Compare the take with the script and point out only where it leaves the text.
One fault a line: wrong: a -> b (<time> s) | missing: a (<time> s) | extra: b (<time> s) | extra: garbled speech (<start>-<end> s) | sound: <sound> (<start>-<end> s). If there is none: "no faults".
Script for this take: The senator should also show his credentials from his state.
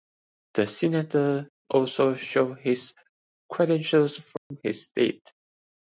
missing: should (1.5 s)
sound: dropout (4.4-4.5 s)